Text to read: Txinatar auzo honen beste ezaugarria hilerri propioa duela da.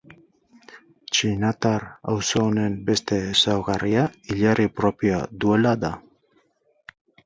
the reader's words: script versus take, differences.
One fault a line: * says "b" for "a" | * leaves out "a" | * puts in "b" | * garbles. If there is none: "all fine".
all fine